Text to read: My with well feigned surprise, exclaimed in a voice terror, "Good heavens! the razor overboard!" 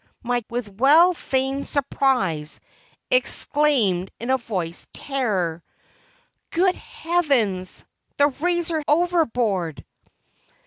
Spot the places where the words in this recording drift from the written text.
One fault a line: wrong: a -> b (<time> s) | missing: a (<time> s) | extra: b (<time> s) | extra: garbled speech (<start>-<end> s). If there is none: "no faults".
no faults